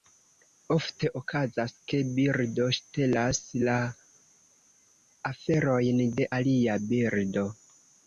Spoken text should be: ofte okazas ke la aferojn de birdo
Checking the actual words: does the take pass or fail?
fail